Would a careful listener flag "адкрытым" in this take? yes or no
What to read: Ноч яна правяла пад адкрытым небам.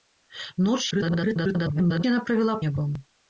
yes